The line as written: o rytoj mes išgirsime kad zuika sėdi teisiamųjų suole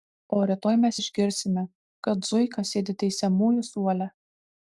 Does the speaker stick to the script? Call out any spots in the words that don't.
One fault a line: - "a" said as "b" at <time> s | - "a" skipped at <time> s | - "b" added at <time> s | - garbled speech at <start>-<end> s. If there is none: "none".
none